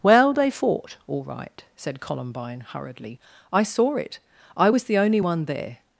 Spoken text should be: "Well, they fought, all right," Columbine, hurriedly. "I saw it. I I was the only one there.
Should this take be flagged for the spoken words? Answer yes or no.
yes